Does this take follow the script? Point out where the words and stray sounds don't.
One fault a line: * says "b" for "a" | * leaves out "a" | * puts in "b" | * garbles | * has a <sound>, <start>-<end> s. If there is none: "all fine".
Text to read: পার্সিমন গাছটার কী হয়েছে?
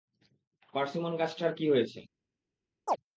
* has a chirp, 2.9-3.0 s